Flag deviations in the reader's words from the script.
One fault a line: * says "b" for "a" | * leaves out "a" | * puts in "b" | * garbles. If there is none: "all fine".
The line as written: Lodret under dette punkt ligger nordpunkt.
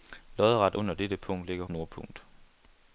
all fine